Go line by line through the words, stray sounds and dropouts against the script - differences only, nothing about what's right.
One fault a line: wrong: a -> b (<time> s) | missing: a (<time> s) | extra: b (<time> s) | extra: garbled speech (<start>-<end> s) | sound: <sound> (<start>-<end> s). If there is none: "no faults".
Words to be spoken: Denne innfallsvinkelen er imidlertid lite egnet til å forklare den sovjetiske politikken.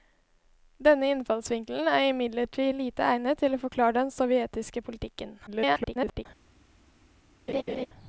extra: garbled speech (5.5-6.3 s)
sound: laugh (7.5-7.9 s)